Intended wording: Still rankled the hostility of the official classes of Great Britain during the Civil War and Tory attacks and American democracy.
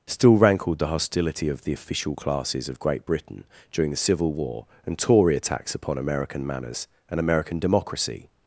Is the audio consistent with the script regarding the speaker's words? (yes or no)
no